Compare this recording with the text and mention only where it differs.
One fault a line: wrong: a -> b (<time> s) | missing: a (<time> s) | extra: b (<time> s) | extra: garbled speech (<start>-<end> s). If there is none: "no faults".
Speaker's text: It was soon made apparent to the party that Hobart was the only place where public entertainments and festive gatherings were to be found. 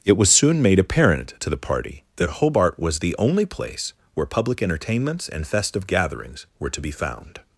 no faults